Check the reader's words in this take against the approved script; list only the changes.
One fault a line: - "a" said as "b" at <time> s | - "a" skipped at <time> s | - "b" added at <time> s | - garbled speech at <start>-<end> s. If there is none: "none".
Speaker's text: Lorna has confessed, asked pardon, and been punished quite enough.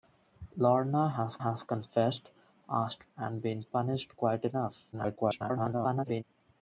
- "has" added at 1.4 s
- "pardon" skipped at 3.1 s
- garbled speech at 4.9-6.2 s